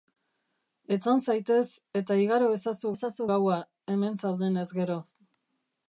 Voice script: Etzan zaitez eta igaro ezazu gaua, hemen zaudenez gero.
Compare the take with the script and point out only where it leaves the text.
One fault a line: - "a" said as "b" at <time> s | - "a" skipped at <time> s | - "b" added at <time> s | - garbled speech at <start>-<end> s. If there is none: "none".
- "ezazu" added at 2.9 s